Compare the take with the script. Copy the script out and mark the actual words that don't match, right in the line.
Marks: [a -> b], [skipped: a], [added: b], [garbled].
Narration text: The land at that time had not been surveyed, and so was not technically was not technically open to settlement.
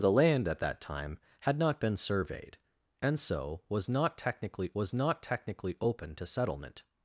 The land at that time had not been surveyed, and so was not technically was not technically open to settlement.